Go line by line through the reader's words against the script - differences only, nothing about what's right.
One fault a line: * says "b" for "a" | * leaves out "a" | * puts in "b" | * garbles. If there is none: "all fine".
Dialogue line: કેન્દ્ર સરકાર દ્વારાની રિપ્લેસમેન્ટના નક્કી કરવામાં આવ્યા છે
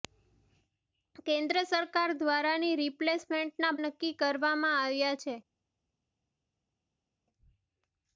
all fine